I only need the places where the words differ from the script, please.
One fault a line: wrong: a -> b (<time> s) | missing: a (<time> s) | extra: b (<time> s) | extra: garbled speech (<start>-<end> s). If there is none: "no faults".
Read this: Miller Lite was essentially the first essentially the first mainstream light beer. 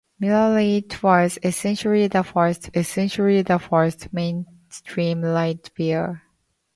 no faults